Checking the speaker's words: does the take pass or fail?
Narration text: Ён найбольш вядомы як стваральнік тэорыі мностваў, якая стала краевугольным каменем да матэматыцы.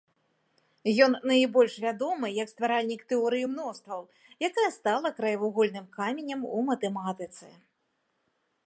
fail